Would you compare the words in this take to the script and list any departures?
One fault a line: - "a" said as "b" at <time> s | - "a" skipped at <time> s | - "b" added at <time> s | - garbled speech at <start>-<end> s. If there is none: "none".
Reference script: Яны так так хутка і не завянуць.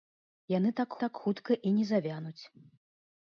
none